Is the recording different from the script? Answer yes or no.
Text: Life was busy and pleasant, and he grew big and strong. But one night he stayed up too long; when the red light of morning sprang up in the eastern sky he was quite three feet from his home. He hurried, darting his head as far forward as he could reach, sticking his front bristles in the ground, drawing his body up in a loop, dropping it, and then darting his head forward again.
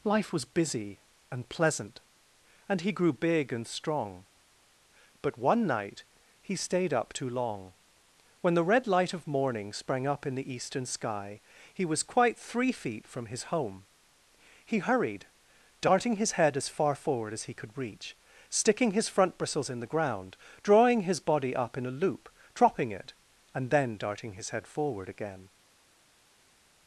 no